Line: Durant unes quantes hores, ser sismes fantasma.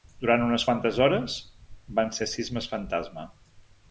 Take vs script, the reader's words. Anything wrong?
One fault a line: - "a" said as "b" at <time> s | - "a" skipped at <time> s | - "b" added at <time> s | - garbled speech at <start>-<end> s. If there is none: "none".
- "van" added at 2.0 s